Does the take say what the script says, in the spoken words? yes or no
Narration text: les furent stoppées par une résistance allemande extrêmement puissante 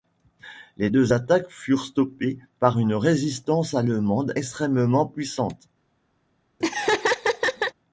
no